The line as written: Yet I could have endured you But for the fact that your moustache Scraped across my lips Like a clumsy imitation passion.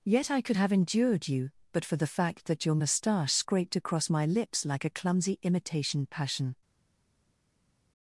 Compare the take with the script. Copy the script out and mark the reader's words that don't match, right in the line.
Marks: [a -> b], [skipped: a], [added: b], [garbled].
Yet I could have endured you But for the fact that your moustache Scraped across my lips Like a clumsy imitation passion.